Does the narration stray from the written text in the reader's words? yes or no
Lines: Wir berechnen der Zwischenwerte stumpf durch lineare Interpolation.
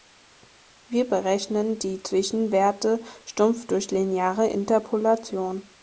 yes